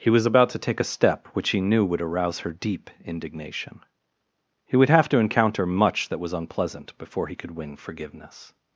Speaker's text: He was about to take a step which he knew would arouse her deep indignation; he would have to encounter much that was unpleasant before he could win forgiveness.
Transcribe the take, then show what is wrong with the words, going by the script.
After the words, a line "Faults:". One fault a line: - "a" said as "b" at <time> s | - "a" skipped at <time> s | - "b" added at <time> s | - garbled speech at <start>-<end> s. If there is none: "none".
He was about to take a step which he knew would arouse her deep indignation; he would have to encounter much that was unpleasant before he could win forgiveness.
Faults:
none